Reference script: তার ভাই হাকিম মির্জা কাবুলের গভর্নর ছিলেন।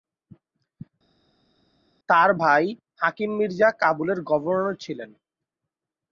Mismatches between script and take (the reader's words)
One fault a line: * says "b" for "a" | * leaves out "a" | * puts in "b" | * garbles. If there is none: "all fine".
all fine